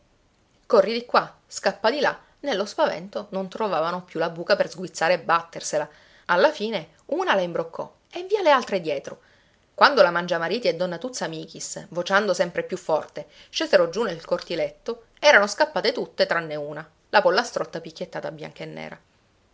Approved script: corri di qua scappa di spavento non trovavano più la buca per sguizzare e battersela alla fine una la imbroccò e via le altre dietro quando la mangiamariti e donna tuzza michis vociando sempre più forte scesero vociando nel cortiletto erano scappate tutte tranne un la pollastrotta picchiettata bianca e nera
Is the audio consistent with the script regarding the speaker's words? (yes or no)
no